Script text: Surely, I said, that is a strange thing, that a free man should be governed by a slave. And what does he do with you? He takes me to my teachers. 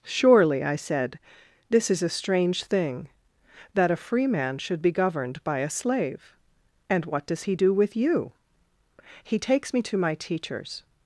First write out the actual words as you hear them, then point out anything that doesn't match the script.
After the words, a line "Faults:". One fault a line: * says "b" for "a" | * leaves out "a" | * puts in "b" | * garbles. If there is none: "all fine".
Surely, I said, this is a strange thing, that a free man should be governed by a slave. And what does he do with you? He takes me to my teachers.
Faults:
* says "this" for "that"